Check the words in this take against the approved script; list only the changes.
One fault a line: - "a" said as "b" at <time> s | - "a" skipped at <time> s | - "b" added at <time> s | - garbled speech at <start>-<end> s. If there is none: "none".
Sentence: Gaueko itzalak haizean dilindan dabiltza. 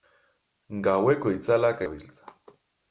- "haizean dilindan" skipped at 1.8 s